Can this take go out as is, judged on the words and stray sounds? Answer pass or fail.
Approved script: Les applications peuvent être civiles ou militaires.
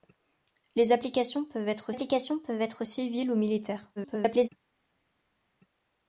fail